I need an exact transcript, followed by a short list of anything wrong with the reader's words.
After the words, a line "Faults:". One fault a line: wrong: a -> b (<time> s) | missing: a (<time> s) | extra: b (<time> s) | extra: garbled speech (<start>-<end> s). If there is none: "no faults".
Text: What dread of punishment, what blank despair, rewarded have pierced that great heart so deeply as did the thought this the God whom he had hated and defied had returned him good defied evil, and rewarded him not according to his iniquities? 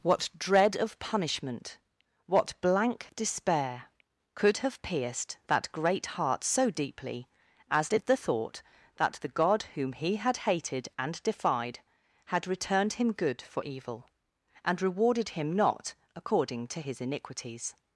What dread of punishment, what blank despair, could have pierced that great heart so deeply as did the thought that the God whom he had hated and defied had returned him good for evil, and rewarded him not according to his iniquities?
Faults:
wrong: rewarded -> could (4.3 s)
wrong: this -> that (8.9 s)
wrong: defied -> for (13.4 s)